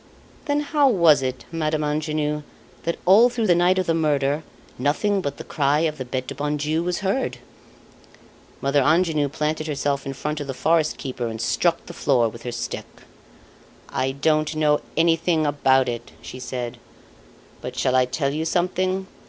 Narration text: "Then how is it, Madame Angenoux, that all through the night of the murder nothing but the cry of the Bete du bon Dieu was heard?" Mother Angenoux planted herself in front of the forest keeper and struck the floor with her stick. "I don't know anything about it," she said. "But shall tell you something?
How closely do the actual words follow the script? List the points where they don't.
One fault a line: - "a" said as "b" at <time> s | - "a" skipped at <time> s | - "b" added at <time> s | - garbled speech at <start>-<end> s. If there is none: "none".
- "is" said as "was" at 0.9 s
- "I" added at 18.0 s